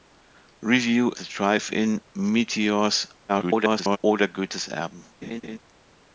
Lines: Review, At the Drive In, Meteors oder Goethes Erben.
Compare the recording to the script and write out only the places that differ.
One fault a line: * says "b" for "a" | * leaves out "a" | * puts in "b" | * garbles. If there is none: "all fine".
* leaves out "At"
* garbles